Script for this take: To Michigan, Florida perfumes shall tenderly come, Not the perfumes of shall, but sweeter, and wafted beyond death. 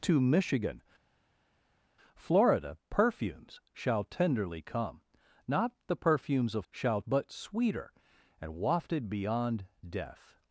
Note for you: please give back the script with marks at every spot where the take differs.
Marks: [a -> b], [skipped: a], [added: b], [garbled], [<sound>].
To Michigan, Florida perfumes shall tenderly come, Not the perfumes of shall, but sweeter, and wafted beyond death.